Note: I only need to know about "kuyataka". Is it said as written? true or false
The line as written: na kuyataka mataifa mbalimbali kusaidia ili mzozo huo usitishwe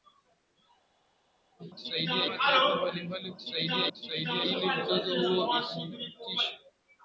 false